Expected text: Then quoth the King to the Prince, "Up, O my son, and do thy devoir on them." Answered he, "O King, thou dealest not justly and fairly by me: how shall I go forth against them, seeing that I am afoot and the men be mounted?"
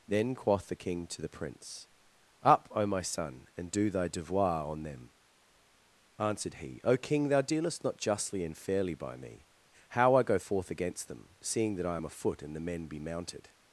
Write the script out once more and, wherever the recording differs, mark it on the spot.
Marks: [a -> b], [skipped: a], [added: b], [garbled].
Then quoth the King to the Prince, "Up, O my son, and do thy devoir on them." Answered he, "O King, thou dealest not justly and fairly by me: how [skipped: shall] I go forth against them, seeing that I am afoot and the men be mounted?"